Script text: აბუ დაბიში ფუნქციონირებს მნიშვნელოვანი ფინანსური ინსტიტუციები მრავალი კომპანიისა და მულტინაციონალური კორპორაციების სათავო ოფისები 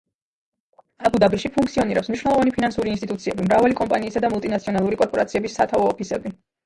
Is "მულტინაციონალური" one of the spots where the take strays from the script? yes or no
no